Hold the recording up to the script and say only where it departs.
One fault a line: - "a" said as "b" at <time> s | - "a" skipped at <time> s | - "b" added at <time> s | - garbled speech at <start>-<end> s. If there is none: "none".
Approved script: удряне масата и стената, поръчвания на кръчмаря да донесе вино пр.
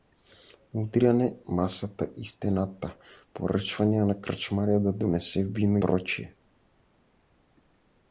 none